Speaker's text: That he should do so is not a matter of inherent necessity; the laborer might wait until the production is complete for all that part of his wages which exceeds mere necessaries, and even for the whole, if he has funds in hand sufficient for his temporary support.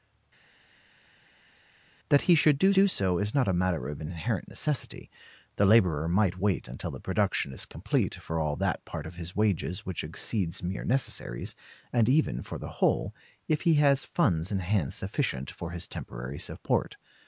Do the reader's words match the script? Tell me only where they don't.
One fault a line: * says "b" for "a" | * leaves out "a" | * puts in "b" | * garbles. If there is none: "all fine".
* puts in "do"